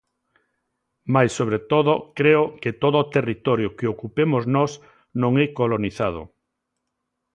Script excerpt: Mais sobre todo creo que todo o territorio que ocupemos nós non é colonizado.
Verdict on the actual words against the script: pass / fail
pass